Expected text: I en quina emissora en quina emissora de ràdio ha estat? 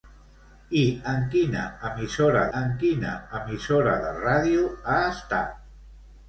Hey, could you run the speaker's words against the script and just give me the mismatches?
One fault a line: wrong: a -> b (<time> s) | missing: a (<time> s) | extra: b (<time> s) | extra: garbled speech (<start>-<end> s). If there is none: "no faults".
no faults